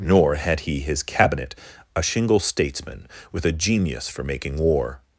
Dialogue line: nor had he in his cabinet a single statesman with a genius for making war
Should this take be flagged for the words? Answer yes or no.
yes